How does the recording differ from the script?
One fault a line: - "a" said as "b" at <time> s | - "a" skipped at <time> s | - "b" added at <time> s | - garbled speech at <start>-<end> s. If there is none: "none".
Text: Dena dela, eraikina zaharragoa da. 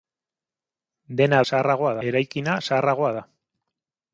- "dela" said as "zaharragoa" at 1.5 s